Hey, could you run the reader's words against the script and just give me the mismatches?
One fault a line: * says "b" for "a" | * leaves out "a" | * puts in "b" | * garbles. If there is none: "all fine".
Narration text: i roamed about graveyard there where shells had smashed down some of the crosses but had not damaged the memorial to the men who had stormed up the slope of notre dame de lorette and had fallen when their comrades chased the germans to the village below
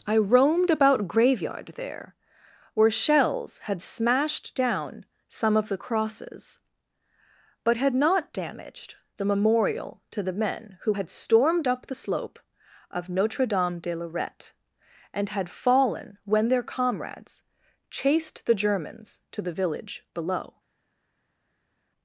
all fine